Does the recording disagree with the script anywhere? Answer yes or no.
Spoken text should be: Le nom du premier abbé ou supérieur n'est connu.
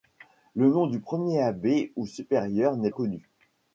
no